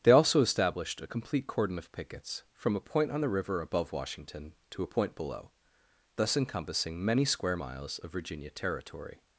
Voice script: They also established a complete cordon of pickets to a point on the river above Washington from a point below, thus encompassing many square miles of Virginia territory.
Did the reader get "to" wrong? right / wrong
wrong